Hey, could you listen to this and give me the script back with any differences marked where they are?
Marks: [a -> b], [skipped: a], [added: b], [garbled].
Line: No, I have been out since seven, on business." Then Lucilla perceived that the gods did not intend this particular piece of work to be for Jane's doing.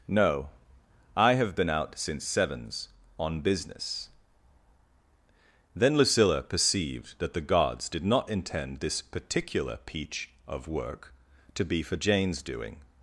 No, I have been out since [seven, -> sevens] on business." Then Lucilla perceived that the gods did not intend this particular [piece -> peach] of work to be for Jane's doing.